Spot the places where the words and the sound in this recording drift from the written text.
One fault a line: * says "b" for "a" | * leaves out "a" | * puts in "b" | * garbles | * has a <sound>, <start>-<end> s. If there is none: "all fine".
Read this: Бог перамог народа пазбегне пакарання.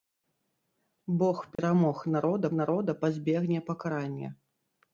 * has a dropout, 1.6-1.6 s
* puts in "народа"